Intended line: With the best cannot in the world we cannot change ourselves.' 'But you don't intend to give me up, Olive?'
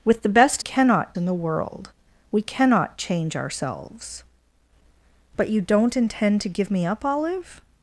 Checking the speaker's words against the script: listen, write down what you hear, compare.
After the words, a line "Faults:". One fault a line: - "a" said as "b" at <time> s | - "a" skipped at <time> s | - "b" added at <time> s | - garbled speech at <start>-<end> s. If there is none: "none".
With the best cannot in the world we cannot change ourselves.' 'But you don't intend to give me up, Olive?'
Faults:
none